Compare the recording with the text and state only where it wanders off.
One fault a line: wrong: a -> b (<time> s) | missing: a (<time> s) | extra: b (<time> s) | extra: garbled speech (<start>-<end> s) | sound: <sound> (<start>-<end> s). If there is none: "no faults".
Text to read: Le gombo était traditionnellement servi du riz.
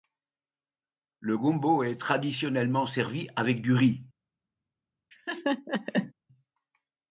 wrong: était -> est (1.8 s)
extra: avec (3.3 s)
sound: laugh (5.1-6.1 s)